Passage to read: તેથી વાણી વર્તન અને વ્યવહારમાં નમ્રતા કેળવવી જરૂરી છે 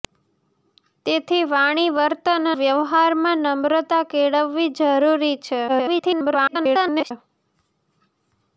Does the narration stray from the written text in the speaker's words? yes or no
yes